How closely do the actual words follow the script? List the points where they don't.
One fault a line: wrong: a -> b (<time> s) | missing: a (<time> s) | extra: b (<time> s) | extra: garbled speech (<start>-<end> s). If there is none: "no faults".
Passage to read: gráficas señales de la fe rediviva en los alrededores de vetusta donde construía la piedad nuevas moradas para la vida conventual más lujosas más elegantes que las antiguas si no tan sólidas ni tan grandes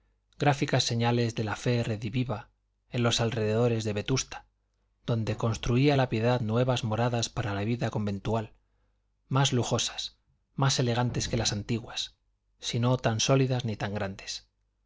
no faults